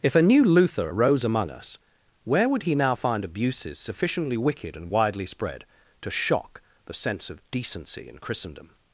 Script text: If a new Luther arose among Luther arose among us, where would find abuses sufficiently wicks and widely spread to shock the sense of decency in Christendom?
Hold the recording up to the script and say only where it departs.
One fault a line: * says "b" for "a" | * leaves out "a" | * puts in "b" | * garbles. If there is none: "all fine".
* leaves out "Luther arose among"
* puts in "he now"
* says "wicked" for "wicks"